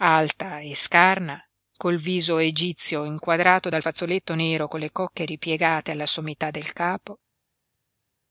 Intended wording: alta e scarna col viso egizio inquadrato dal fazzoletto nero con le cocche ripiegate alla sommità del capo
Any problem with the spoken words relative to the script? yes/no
no